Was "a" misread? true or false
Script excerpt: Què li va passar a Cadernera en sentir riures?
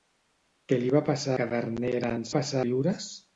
true